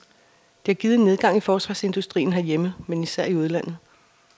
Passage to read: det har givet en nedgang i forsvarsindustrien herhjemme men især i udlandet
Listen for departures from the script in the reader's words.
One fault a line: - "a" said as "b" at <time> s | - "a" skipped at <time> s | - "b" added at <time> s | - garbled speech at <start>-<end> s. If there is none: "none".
none